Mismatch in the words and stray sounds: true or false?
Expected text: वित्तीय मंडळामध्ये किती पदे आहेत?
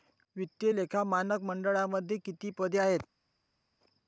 true